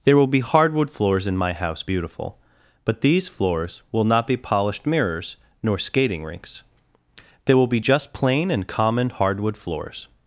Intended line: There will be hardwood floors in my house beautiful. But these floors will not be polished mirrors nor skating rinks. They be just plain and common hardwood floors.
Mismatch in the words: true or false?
true